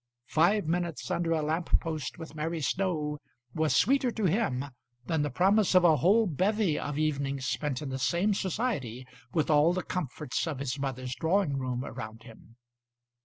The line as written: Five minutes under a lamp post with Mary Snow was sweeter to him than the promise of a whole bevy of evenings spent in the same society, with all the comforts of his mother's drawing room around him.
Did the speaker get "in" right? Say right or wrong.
right